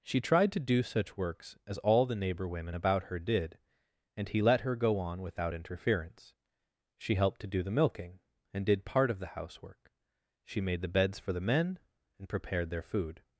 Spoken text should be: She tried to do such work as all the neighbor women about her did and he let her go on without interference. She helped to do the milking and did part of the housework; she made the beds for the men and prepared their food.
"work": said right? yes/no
no